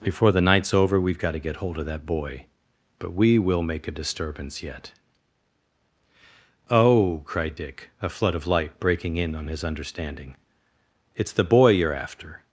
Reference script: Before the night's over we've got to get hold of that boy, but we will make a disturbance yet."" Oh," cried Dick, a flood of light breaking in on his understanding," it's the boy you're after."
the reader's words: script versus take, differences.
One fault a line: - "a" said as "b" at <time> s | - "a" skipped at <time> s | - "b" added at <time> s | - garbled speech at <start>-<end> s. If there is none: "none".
none